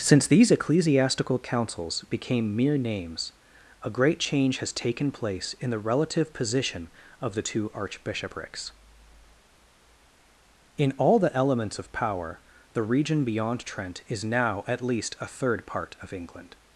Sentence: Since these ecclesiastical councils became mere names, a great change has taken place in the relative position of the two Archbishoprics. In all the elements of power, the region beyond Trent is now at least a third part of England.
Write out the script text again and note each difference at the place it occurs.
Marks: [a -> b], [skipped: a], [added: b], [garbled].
Since these ecclesiastical councils became mere names, a great change has taken place in the relative position of the two Archbishoprics. In all the elements of power, the region beyond Trent is now at least a third part of England.